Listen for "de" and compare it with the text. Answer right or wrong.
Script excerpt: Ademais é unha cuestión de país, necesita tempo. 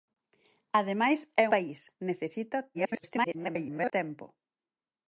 wrong